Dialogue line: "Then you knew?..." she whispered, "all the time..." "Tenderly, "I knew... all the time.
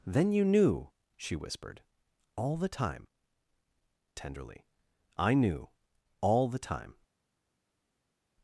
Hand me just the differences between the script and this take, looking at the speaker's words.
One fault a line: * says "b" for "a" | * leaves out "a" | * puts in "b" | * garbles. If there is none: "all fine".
all fine